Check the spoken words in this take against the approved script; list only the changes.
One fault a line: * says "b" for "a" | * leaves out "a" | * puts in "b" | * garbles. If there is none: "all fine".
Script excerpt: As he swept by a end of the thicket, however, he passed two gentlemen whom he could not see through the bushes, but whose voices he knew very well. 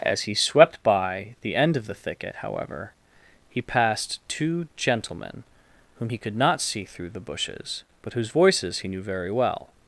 * says "the" for "a"